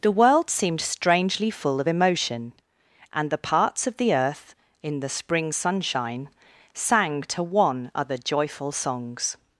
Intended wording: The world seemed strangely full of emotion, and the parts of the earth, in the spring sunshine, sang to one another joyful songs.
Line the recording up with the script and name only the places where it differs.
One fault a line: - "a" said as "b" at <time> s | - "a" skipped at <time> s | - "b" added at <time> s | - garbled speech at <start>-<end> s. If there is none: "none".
- "another" said as "other" at 8.0 s